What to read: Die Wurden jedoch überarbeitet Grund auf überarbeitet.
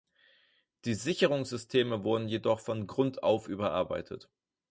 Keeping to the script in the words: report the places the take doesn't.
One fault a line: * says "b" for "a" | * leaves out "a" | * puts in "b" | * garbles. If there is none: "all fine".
* puts in "Sicherungssysteme"
* says "von" for "überarbeitet"